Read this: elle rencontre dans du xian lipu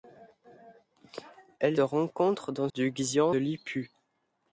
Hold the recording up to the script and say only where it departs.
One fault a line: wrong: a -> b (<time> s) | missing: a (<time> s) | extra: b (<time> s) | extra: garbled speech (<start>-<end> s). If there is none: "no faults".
no faults